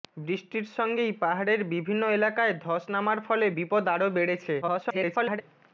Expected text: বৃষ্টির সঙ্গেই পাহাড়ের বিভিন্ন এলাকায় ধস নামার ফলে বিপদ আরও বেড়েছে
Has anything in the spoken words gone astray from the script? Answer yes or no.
yes